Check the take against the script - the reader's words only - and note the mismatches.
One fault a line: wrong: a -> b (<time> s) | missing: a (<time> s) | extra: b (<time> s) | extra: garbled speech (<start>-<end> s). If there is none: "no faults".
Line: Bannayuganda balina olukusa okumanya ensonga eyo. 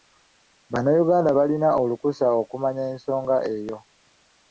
no faults